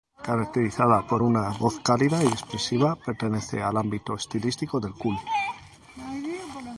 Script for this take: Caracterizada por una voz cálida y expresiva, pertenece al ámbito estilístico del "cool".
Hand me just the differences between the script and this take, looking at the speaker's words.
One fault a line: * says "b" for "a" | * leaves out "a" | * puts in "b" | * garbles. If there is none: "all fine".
all fine